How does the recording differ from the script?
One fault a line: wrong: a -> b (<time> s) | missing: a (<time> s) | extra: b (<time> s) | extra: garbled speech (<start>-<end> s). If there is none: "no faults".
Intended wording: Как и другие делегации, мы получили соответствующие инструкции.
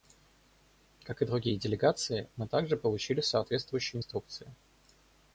extra: также (2.5 s)